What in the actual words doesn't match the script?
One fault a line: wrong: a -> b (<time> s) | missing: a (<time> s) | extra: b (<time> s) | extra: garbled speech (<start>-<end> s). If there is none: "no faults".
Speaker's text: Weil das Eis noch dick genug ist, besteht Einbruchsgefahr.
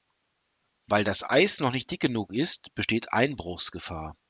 extra: nicht (1.7 s)